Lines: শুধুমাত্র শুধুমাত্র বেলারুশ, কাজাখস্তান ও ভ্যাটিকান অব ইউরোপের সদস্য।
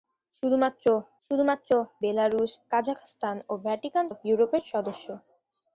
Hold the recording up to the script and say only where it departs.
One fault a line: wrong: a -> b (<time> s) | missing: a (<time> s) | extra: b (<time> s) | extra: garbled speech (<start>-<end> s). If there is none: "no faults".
no faults